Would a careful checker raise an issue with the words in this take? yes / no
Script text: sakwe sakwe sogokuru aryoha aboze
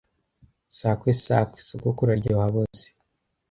no